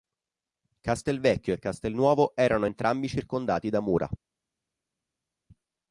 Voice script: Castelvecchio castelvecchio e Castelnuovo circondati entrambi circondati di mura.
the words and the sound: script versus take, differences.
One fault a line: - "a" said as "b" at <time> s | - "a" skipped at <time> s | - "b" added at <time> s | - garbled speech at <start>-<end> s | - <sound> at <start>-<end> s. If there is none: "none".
- "castelvecchio" skipped at 1.5 s
- "circondati" said as "erano" at 2.4 s
- "di" said as "da" at 3.7 s